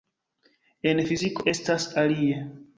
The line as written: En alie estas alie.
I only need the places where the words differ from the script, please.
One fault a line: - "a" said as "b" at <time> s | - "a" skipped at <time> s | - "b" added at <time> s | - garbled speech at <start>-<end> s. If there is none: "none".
- "alie" said as "fiziko" at 1.1 s